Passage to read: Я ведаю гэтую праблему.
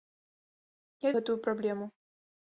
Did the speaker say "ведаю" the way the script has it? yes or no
no